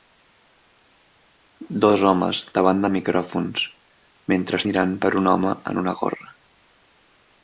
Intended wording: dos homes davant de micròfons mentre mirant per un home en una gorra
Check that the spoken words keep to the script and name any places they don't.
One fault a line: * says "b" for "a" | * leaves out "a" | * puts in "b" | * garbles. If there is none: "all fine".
all fine